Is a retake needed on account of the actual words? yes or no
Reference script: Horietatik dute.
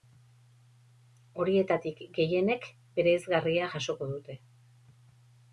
yes